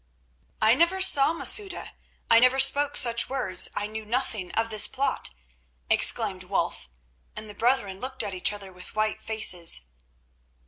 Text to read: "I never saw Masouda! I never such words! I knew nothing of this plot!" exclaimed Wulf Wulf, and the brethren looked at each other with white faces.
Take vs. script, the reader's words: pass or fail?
fail